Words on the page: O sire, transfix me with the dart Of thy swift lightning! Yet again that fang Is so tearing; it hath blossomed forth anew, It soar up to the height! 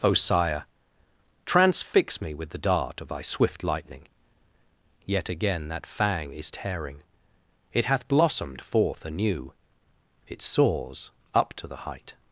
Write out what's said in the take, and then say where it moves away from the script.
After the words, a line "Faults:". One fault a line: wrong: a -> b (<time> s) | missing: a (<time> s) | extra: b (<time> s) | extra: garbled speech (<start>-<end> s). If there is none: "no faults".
O sire, transfix me with the dart Of thy swift lightning! Yet again that fang Is tearing; it hath blossomed forth anew, It soars up to the height!
Faults:
missing: so (6.5 s)
wrong: soar -> soars (10.4 s)